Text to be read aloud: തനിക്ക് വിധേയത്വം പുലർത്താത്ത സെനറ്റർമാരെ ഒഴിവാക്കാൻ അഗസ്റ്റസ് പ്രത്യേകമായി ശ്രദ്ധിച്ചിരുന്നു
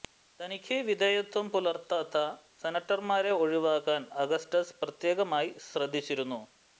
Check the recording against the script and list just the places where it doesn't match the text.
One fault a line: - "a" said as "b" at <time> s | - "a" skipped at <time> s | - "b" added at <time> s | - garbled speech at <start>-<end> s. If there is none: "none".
none